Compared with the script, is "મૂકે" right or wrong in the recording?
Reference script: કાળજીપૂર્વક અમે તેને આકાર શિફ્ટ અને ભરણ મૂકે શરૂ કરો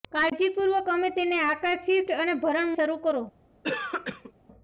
wrong